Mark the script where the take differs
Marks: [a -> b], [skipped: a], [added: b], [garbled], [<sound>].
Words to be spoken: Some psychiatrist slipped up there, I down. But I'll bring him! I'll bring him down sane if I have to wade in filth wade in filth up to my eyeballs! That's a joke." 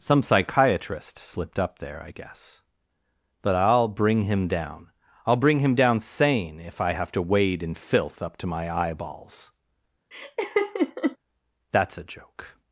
Some psychiatrist slipped up there, I [down. -> guess] But I'll bring him! [added: down] I'll bring him down sane if I have to wade in filth [skipped: wade in filth] up to my eyeballs! [laugh] That's a joke."